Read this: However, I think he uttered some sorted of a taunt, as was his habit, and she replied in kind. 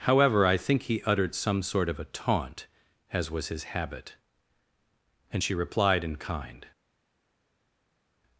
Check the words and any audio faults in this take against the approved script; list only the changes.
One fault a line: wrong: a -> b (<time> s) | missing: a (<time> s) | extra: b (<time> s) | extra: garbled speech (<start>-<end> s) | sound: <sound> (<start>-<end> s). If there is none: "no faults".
wrong: sorted -> sort (1.6 s)